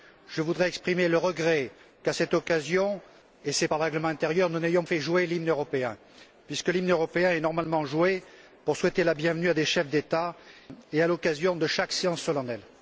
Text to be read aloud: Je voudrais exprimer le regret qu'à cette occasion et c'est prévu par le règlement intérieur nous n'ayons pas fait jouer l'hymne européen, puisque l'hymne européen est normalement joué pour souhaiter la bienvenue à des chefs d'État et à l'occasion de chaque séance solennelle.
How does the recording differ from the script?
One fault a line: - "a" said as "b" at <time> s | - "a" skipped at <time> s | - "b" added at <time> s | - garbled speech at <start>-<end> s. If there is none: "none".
- "prévu" skipped at 3.7 s
- "pas" skipped at 4.8 s